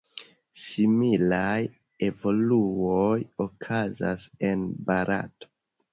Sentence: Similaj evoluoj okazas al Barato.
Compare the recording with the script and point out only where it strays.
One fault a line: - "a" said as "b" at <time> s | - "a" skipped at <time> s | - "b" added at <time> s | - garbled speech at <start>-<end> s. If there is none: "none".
- "al" said as "en" at 4.5 s